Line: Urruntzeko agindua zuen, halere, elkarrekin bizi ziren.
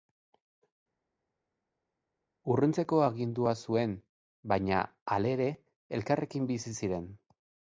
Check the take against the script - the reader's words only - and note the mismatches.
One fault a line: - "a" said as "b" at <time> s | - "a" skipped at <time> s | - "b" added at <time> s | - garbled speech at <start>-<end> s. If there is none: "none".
- "baina" added at 4.5 s